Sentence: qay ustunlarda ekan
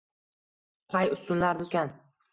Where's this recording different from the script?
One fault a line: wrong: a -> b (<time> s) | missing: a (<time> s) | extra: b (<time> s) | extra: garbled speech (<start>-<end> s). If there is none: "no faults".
no faults